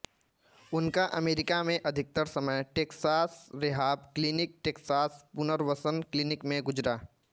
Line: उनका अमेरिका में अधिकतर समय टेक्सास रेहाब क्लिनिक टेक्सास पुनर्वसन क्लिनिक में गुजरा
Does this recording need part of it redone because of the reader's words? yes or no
no